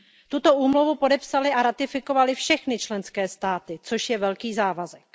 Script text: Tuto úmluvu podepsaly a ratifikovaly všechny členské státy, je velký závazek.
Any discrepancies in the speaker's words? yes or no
yes